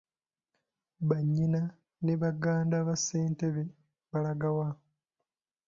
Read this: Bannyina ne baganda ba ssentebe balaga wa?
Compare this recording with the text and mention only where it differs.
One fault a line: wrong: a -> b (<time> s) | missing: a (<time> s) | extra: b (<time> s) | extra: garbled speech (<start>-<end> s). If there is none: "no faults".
no faults